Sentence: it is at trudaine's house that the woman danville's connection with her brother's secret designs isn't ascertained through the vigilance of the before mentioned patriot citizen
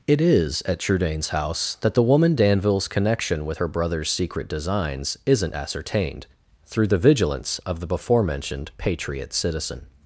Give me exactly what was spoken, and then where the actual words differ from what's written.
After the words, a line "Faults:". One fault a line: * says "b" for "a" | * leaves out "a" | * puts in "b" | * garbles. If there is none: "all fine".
it is at trudaine's house that the woman danville's connection with her brother's secret designs isn't ascertained through the vigilance of the before mentioned patriot citizen
Faults:
all fine